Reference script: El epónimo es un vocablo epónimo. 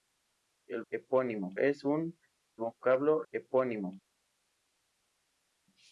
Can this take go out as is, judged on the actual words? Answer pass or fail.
pass